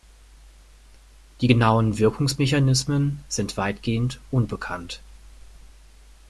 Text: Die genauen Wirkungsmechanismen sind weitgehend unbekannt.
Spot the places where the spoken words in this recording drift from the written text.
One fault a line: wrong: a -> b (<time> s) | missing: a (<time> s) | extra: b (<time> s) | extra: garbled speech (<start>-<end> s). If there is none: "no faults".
no faults